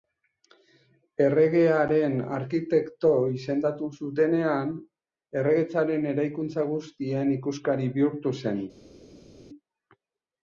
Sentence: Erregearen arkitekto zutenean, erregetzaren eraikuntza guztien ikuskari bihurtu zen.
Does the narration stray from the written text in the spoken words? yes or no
yes